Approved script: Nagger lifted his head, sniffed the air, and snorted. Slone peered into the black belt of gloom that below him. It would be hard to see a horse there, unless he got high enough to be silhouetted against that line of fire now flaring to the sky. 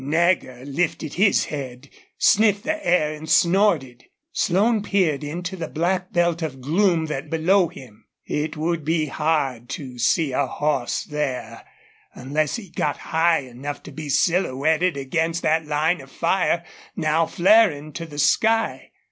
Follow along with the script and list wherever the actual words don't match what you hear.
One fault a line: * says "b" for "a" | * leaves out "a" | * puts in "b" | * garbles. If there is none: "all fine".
all fine